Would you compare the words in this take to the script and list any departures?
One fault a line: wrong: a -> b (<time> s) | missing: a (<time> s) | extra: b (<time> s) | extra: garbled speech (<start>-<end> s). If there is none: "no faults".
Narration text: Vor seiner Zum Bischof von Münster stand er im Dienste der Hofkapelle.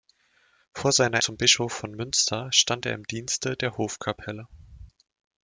no faults